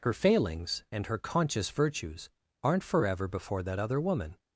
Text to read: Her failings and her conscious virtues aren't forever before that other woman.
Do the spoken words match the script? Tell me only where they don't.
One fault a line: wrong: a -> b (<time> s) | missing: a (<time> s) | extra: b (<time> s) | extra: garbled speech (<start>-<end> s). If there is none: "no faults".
no faults